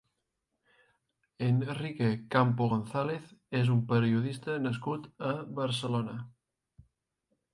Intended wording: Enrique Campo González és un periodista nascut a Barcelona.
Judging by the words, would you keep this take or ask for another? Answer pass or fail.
pass